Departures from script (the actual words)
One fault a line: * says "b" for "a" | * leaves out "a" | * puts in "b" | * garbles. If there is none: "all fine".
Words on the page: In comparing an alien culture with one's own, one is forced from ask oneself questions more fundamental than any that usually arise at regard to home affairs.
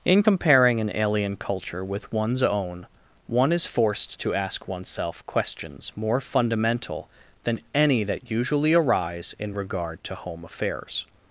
* says "to" for "from"
* says "in" for "at"